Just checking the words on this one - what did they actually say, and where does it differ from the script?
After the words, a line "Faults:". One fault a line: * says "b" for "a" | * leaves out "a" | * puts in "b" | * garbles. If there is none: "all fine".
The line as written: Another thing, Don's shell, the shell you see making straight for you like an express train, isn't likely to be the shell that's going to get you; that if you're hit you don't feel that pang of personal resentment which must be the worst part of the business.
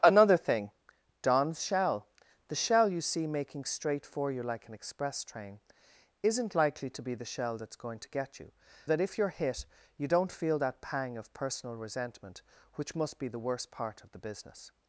Another thing, Don's shell, the shell you see making straight for you like an express train, isn't likely to be the shell that's going to get you; that if you're hit you don't feel that pang of personal resentment which must be the worst part of the business.
Faults:
all fine